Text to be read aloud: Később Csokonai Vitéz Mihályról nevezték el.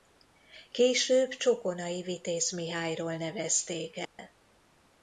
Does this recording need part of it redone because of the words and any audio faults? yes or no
yes